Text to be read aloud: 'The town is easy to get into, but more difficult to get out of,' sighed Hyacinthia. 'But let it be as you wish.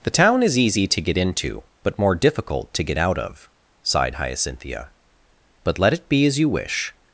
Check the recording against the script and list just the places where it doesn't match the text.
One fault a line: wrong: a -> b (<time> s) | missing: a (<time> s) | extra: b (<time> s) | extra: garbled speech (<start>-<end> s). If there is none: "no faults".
no faults